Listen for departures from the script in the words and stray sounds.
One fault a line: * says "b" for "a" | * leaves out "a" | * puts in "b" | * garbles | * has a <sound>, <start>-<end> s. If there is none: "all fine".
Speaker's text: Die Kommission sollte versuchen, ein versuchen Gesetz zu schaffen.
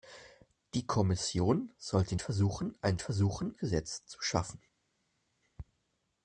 all fine